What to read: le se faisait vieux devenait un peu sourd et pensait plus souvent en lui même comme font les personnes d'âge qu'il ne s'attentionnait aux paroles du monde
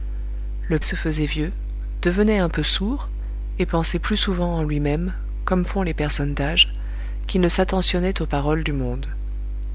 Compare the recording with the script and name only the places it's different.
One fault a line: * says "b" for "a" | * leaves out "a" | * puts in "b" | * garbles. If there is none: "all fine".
all fine